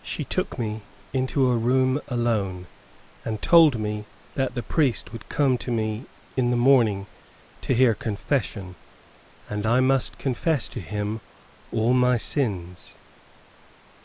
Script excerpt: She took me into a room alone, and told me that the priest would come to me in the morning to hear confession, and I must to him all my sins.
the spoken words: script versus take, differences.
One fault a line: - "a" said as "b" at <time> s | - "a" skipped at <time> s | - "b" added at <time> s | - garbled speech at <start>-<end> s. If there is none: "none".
- "confess" added at 10.2 s